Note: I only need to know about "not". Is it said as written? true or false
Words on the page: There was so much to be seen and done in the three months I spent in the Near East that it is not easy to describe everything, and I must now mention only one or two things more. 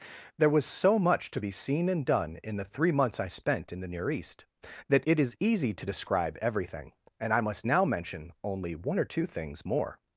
false